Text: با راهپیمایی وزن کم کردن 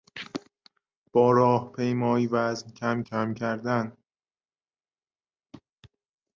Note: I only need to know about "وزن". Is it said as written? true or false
true